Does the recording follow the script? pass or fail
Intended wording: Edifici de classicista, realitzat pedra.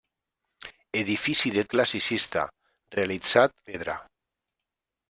pass